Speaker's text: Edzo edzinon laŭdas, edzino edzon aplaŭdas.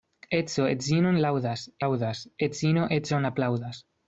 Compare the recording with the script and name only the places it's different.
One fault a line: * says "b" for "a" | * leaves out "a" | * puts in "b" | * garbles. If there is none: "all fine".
* puts in "laŭdas"